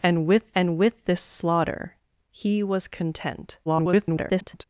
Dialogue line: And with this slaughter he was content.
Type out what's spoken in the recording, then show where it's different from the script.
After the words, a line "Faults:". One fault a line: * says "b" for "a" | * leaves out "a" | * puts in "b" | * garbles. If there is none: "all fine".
And with and with this slaughter he was content. [garbled]
Faults:
* puts in "and with"
* garbles